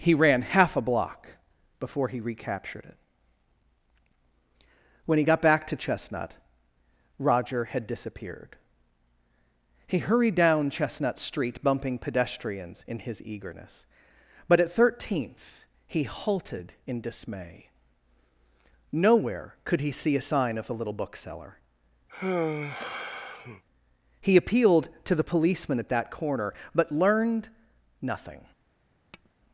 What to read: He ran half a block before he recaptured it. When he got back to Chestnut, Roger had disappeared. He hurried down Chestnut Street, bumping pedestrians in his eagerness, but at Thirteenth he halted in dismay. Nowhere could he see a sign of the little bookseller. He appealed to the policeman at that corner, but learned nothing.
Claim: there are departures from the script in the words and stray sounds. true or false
true